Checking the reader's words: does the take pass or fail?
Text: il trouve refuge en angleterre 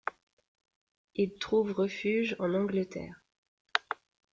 pass